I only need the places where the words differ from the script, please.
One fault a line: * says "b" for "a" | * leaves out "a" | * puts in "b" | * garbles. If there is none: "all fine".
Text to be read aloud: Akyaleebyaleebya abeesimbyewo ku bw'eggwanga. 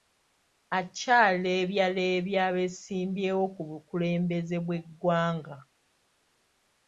* puts in "bukulembeze"